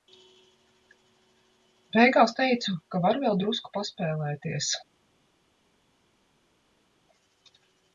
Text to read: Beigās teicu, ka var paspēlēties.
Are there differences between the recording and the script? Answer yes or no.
yes